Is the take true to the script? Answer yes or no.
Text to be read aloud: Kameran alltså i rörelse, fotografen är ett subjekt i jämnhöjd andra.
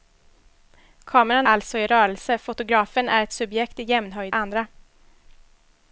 yes